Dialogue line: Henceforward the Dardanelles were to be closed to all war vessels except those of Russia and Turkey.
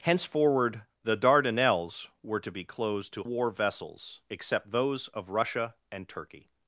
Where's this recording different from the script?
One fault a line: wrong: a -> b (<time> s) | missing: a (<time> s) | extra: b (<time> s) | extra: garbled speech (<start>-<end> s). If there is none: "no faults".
missing: all (3.2 s)